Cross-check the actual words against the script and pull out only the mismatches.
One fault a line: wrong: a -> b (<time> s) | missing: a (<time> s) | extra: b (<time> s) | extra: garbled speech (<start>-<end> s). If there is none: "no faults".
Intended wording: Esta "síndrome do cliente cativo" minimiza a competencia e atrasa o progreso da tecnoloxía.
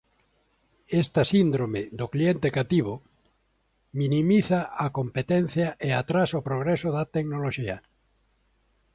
no faults